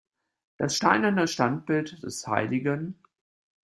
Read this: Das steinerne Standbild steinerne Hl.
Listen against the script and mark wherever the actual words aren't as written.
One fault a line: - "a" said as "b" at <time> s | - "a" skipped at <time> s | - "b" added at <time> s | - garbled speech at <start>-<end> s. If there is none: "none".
- "steinerne" said as "des" at 2.0 s